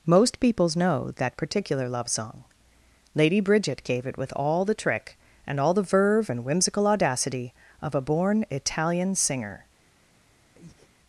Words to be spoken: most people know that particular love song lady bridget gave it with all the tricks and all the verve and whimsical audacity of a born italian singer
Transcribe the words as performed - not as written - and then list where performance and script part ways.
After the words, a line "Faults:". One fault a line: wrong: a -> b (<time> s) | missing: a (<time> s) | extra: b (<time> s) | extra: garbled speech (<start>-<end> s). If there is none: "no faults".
most peoples know that particular love song lady bridget gave it with all the trick and all the verve and whimsical audacity of a born italian singer
Faults:
wrong: people -> peoples (0.4 s)
wrong: tricks -> trick (4.7 s)